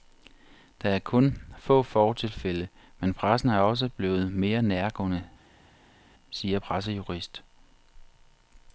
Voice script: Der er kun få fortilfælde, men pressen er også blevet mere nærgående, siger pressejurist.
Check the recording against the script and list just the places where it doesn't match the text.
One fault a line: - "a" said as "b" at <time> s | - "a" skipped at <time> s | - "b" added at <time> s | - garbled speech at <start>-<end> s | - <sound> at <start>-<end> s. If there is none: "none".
none